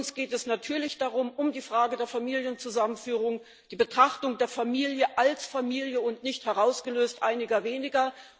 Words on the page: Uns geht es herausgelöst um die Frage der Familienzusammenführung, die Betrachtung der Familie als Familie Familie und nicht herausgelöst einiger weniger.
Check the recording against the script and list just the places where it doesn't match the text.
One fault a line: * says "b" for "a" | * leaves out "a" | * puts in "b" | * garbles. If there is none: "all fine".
* says "natürlich" for "herausgelöst"
* leaves out "Familie"